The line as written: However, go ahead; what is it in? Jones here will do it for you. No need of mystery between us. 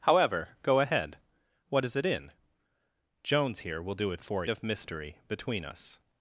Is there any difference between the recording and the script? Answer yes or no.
yes